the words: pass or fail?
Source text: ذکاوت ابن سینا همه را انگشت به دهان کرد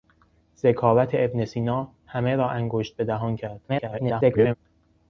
fail